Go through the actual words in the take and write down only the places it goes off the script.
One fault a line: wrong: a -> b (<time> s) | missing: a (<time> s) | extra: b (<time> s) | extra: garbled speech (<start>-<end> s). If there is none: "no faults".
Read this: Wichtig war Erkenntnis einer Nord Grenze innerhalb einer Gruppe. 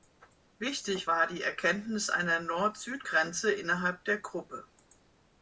extra: die (1.3 s)
extra: Süd (2.8 s)
wrong: einer -> der (4.0 s)